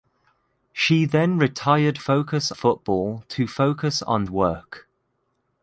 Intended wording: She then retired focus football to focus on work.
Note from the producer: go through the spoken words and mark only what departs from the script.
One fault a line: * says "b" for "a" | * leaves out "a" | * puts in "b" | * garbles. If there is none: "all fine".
all fine